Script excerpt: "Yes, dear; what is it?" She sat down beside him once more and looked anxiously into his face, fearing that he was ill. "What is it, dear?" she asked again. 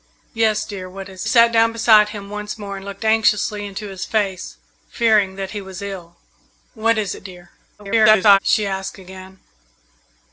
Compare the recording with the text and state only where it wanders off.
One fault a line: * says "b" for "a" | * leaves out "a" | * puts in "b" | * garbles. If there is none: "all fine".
* leaves out "it She"
* garbles